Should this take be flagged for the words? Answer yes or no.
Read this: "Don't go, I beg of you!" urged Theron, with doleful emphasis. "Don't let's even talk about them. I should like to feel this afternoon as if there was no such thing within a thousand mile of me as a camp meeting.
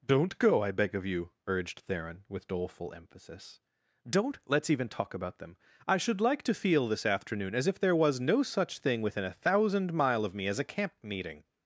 no